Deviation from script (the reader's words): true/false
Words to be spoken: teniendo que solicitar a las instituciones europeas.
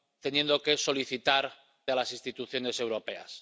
false